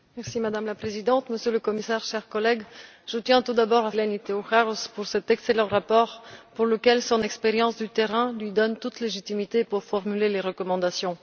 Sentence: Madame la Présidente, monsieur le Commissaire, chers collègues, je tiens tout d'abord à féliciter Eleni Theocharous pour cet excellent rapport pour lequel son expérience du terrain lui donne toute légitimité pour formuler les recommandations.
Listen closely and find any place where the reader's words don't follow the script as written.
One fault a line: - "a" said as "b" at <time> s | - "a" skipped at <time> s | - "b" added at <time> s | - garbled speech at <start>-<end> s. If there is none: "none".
- "féliciter" skipped at 3.9 s